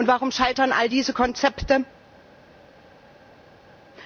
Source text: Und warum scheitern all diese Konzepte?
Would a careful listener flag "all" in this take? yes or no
no